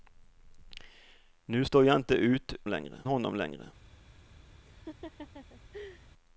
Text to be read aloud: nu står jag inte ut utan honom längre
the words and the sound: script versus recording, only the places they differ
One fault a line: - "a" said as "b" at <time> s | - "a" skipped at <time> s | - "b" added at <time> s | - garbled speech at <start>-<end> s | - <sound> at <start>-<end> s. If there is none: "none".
- "utan" said as "längre" at 2.7 s
- laugh at 4.6-6.1 s